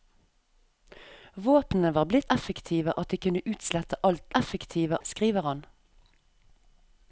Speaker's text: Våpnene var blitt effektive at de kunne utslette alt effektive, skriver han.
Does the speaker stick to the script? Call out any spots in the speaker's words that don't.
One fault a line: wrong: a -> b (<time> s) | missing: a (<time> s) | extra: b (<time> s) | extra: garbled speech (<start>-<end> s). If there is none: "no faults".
no faults